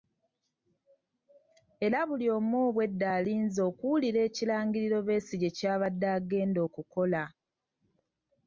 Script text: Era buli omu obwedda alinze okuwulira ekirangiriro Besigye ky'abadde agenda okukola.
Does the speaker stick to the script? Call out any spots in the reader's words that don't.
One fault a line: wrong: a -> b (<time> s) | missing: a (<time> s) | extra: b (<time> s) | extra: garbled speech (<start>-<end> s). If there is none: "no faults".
no faults